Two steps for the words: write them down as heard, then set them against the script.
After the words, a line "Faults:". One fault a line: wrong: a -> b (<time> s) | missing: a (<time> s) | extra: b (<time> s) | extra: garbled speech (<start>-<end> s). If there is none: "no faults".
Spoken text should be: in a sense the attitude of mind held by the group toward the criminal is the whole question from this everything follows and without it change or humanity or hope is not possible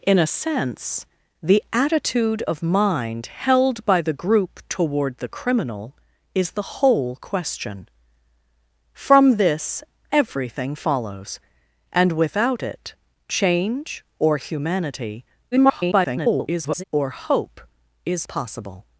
in a sense the attitude of mind held by the group toward the criminal is the whole question from this everything follows and without it change or humanity [garbled] or hope is possible
Faults:
extra: garbled speech (15.5-16.8 s)
missing: not (18.3 s)